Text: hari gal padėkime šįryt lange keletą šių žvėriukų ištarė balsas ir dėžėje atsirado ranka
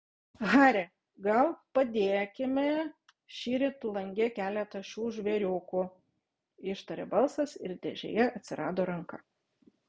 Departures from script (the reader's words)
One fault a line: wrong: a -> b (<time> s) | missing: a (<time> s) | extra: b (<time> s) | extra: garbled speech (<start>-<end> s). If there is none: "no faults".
no faults